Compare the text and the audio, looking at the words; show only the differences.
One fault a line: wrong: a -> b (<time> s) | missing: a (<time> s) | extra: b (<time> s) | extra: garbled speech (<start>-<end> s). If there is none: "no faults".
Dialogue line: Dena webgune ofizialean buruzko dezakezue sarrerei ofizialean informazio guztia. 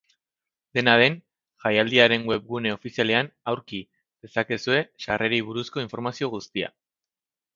extra: den jaialdiaren (1.0 s)
wrong: buruzko -> aurki (3.5 s)
wrong: ofizialean -> buruzko (5.5 s)